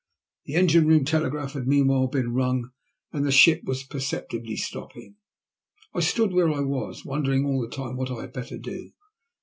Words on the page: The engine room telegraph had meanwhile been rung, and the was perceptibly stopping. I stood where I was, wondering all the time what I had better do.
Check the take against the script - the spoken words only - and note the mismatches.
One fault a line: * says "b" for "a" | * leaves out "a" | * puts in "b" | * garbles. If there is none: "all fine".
* puts in "ship"